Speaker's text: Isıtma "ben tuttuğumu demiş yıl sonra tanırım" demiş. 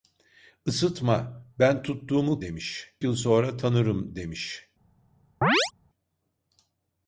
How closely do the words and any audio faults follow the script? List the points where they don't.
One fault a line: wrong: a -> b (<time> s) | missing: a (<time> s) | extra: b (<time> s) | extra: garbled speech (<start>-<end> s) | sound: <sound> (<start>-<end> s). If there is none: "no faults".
sound: chirp (5.4-5.7 s)